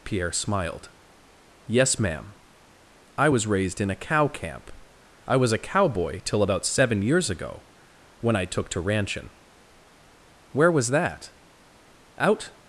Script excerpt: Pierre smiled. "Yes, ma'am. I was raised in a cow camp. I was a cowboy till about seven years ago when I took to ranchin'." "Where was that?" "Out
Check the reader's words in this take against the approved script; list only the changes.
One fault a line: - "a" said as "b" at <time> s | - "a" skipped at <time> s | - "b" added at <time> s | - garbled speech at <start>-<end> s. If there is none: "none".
none